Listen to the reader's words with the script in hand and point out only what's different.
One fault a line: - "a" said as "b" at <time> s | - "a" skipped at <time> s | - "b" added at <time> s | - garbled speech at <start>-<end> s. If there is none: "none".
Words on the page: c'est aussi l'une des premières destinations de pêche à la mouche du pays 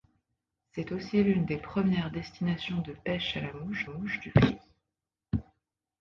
- "mouche" added at 3.9 s